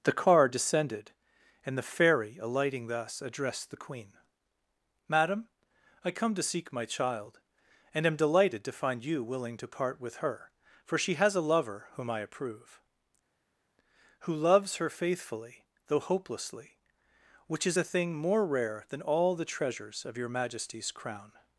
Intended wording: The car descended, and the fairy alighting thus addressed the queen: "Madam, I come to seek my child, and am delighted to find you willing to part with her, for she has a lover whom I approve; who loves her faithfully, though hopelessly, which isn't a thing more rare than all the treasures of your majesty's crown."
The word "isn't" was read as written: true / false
false